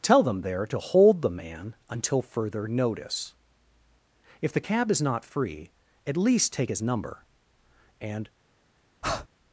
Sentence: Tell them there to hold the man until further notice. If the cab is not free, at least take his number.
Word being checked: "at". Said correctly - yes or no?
yes